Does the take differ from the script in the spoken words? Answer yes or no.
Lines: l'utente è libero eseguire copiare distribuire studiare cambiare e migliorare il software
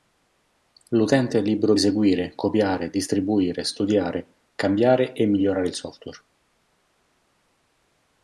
no